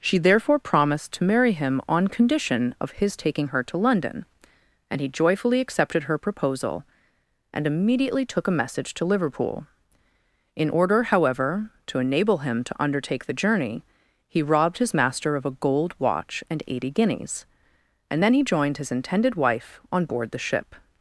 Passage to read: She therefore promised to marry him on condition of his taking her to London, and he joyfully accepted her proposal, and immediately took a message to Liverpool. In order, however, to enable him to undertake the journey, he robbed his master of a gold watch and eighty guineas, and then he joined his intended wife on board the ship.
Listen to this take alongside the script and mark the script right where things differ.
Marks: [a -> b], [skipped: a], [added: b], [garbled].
She therefore promised to marry him on condition of his taking her to London, and he joyfully accepted her proposal, and immediately took a message to Liverpool. In order, however, to enable him to undertake the journey, he robbed his master of a gold watch and eighty guineas, and then he joined his intended wife on board the ship.